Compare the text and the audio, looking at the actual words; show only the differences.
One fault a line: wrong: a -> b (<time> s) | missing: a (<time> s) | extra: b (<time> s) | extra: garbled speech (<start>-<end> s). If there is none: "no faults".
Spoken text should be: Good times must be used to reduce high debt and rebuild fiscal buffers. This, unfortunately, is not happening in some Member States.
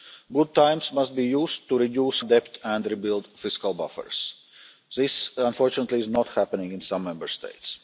missing: high (2.2 s)